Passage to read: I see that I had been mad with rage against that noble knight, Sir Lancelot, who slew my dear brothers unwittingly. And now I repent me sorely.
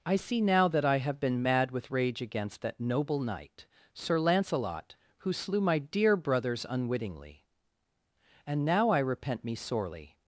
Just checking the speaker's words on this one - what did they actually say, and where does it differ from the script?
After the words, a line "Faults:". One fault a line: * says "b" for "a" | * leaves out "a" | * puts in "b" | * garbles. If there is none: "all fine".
I see now that I have been mad with rage against that noble knight, Sir Lancelot, who slew my dear brothers unwittingly. And now I repent me sorely.
Faults:
* puts in "now"
* says "have" for "had"